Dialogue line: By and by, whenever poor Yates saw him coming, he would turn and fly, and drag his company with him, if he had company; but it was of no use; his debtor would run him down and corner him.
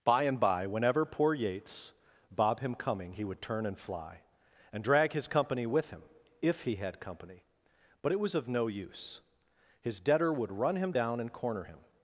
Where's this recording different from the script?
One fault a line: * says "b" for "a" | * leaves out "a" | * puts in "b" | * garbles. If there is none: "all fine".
* says "bob" for "saw"